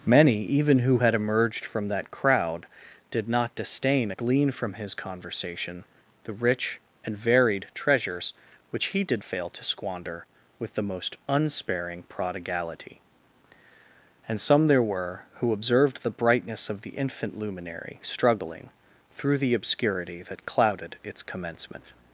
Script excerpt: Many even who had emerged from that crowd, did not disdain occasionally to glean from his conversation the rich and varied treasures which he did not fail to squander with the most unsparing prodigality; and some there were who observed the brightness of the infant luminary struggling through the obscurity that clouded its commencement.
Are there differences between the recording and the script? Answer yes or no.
yes